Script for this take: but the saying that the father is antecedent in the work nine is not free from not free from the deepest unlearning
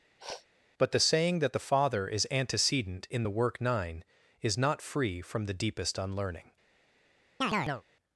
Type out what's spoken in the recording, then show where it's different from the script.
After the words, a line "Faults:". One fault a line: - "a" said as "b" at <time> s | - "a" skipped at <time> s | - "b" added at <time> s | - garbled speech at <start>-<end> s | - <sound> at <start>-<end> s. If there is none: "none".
but the saying that the father is antecedent in the work nine is not free from the deepest unlearning
Faults:
- sniff at 0.2-0.5 s
- "not free from" skipped at 5.4 s
- chirp at 7.4-7.8 s